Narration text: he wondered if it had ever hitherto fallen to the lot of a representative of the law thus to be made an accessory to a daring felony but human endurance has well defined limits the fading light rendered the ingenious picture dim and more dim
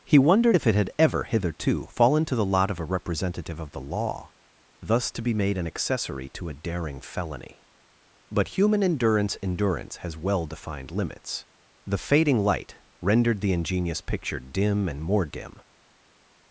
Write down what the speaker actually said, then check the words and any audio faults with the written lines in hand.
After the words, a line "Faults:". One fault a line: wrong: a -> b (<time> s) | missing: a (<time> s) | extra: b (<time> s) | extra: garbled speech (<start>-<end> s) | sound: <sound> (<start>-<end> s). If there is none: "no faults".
he wondered if it had ever hitherto fallen to the lot of a representative of the law thus to be made an accessory to a daring felony but human endurance endurance has well defined limits the fading light rendered the ingenious picture dim and more dim
Faults:
extra: endurance (9.4 s)